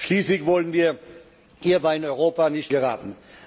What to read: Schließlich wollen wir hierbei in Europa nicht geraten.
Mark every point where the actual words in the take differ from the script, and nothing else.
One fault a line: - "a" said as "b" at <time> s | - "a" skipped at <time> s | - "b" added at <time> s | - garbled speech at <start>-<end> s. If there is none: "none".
none